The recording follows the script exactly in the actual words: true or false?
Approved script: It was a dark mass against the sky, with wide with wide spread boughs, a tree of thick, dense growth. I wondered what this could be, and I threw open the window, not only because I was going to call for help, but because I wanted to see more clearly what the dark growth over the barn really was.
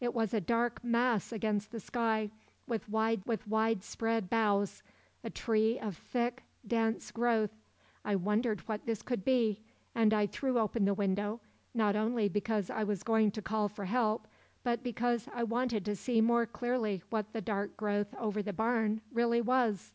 true